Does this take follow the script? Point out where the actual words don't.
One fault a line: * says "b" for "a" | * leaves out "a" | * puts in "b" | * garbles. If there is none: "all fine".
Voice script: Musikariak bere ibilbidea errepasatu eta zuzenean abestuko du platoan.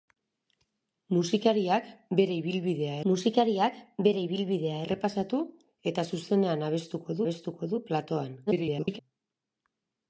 * puts in "musikariak bere ibilbidea"
* puts in "abestuko"
* garbles